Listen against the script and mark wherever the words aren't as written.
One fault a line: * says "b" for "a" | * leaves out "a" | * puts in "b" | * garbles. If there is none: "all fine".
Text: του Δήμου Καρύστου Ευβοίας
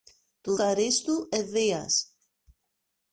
* leaves out "Δήμου"